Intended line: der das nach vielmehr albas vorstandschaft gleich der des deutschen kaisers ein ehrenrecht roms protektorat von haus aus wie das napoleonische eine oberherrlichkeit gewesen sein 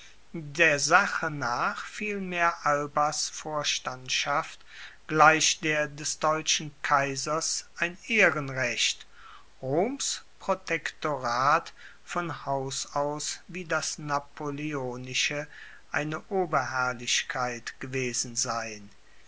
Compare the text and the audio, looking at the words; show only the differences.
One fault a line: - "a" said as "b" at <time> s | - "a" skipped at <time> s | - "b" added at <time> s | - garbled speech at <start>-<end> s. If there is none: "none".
- "das" said as "sache" at 0.8 s